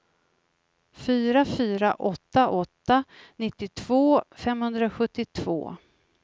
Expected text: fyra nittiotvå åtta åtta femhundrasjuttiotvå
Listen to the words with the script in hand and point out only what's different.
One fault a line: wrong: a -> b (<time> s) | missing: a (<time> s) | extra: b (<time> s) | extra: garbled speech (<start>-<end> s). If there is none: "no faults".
wrong: nittiotvå -> fyra (1.4 s)
extra: nittiotvå (3.4 s)